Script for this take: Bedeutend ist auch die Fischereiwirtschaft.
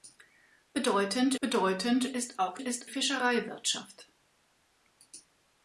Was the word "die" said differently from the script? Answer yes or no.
yes